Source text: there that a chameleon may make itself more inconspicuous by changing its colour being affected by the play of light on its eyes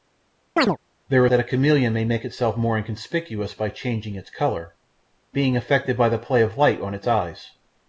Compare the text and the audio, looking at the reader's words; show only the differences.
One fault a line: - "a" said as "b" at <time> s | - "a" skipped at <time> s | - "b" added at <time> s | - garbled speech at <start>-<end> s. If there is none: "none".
none